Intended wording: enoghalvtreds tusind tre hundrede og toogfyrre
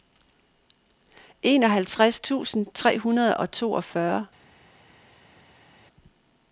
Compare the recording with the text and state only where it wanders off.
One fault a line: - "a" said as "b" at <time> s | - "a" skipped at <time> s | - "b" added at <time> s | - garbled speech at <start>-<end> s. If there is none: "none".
none